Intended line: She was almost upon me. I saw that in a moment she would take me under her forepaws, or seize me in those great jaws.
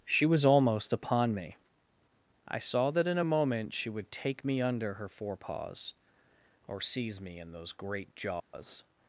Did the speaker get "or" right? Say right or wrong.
right